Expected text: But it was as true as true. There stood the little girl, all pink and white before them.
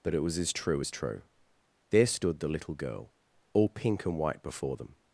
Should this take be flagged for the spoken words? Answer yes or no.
no